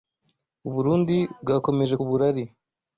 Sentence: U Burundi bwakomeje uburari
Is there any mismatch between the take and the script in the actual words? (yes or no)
no